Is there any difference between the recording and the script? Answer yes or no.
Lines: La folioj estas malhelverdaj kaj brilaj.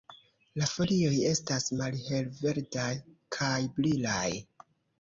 no